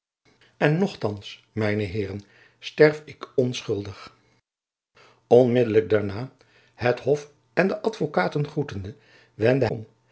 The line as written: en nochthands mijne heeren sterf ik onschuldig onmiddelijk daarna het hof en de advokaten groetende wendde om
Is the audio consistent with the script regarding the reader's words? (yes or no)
yes